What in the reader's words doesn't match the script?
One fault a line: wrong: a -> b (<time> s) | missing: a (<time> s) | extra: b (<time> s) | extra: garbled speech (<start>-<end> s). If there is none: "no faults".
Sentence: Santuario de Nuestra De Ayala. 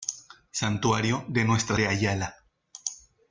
no faults